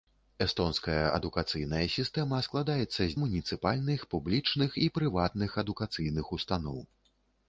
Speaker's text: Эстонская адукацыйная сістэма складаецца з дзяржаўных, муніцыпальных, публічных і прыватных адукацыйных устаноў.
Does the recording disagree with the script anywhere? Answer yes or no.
yes